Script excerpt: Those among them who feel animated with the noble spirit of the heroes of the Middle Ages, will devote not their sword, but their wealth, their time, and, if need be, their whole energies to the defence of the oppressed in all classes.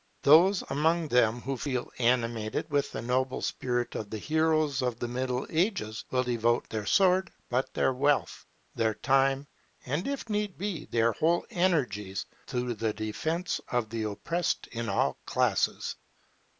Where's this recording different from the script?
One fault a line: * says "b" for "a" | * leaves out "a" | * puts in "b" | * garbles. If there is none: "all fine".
* leaves out "not"